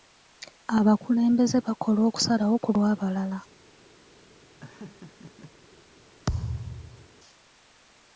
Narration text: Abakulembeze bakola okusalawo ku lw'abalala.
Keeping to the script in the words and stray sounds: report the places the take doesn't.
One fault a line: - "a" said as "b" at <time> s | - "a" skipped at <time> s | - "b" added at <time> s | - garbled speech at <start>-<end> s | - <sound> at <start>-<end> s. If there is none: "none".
- laugh at 4.6-5.5 s
- thud at 6.3-7.1 s